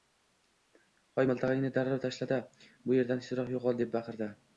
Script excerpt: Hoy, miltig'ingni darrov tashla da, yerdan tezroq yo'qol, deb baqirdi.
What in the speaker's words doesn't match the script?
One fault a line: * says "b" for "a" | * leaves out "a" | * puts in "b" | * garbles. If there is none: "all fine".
* puts in "bu"